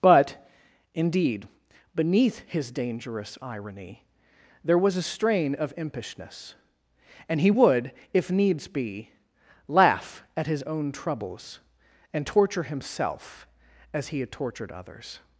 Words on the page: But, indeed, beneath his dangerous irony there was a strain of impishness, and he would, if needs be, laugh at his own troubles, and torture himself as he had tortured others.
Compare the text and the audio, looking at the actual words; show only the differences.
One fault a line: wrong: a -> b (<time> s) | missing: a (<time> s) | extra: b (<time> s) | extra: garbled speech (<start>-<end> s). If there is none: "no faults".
no faults